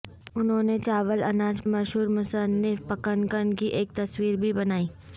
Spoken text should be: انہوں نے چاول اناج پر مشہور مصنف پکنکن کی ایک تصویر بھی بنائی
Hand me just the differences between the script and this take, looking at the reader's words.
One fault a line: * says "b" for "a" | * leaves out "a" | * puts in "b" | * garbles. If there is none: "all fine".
* leaves out "پر"